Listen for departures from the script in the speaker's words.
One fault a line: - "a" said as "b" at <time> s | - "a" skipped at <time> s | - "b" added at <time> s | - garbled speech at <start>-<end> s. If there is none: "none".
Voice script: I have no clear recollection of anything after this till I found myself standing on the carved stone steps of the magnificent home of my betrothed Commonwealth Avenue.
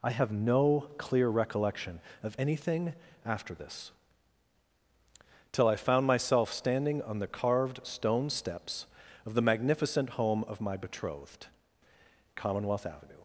none